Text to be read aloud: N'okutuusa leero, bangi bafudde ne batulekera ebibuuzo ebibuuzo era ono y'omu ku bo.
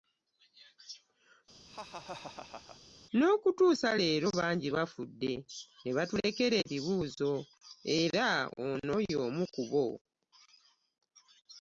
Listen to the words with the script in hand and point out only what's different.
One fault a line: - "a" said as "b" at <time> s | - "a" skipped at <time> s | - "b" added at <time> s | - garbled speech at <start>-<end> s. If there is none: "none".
- "ebibuuzo" skipped at 7.3 s